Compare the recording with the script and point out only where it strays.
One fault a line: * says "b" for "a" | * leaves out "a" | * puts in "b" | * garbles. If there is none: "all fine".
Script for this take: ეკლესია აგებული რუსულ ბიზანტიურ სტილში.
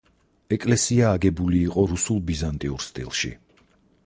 * puts in "იყო"